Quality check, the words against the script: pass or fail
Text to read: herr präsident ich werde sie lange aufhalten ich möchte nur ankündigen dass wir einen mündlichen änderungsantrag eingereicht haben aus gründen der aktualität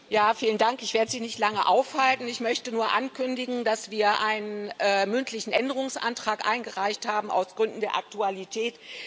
fail